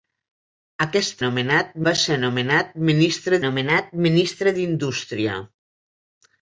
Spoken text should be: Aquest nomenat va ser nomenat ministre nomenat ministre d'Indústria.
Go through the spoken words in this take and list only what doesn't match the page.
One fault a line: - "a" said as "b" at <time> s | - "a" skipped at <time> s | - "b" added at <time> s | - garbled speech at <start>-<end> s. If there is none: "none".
none